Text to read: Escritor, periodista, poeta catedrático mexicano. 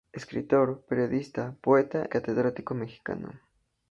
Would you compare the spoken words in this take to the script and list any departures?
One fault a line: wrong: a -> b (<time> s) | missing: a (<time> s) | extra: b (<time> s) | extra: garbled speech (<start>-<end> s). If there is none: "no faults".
no faults